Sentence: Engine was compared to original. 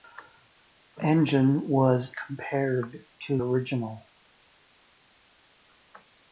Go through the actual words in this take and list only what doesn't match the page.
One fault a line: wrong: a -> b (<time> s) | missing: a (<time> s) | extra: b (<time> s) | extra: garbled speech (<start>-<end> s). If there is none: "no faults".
no faults